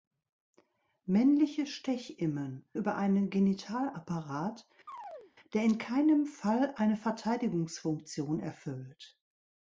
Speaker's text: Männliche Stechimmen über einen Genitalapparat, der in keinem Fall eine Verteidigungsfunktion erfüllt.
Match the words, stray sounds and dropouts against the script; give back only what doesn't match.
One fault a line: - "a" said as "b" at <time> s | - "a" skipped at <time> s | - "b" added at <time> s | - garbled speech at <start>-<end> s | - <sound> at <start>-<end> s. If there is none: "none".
- chirp at 4.9-5.3 s